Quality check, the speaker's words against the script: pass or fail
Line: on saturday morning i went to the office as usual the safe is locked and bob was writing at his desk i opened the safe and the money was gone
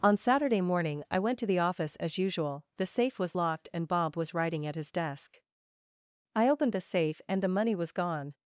fail